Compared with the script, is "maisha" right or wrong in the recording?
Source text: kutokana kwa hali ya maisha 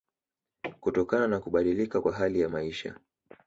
right